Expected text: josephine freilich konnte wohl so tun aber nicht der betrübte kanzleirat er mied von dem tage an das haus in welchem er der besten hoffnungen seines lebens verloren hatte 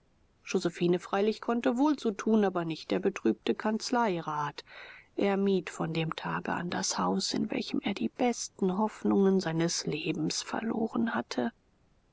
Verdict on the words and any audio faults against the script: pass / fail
fail